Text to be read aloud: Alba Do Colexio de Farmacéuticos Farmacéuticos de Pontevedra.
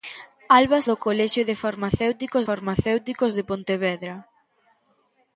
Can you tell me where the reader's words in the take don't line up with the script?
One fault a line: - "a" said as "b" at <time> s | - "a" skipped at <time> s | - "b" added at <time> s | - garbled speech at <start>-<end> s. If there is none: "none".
none